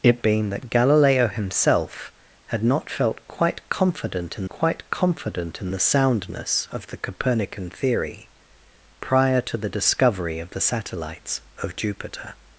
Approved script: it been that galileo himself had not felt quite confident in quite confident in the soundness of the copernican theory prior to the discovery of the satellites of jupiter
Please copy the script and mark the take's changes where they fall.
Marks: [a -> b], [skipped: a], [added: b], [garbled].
it been that galileo himself had not felt quite confident in quite confident in the soundness of the copernican theory prior to the discovery of the satellites of jupiter